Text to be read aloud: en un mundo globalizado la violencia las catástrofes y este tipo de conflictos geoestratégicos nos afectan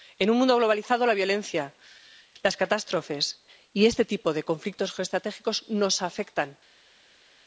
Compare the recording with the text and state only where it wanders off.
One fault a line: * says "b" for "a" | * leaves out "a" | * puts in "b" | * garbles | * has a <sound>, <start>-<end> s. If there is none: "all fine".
all fine